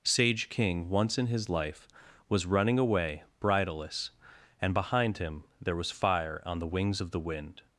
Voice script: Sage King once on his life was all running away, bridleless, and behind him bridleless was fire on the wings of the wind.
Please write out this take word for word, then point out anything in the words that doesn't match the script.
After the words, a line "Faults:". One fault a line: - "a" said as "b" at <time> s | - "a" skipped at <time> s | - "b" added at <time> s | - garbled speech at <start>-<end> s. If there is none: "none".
Sage King once in his life was running away, bridleless, and behind him there was fire on the wings of the wind.
Faults:
- "on" said as "in" at 1.2 s
- "all" skipped at 2.5 s
- "bridleless" said as "there" at 5.6 s